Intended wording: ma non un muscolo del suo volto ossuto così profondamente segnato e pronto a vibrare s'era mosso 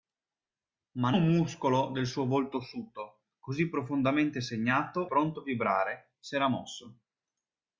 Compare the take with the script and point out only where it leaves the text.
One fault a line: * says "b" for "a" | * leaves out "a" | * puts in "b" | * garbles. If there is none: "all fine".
* leaves out "non"
* leaves out "e"